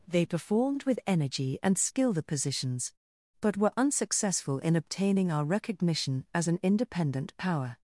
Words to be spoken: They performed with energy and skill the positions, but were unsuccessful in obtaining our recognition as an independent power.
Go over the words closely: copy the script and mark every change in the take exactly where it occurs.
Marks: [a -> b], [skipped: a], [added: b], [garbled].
They performed with energy and skill the positions, but were unsuccessful in obtaining our recognition as an independent power.